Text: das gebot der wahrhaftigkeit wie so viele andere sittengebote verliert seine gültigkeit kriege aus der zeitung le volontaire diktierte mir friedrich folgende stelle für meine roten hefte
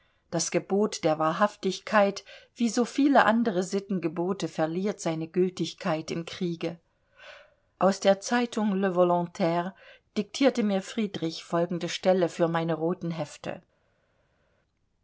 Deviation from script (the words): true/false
true